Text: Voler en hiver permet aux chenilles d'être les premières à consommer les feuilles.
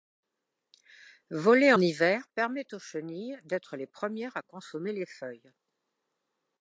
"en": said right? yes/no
no